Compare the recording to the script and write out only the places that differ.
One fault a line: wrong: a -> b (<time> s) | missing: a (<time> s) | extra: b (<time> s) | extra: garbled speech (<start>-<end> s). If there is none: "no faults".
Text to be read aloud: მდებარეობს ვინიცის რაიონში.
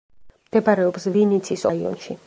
no faults